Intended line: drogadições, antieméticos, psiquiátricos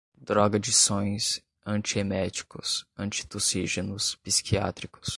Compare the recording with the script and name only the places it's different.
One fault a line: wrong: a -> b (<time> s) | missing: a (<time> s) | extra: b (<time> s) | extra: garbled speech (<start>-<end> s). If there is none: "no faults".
extra: antitussígenos (3.0 s)